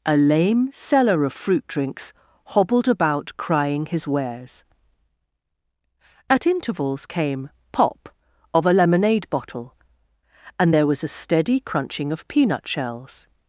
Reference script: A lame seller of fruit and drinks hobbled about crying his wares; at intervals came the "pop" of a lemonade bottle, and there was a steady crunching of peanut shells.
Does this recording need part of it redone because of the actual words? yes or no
yes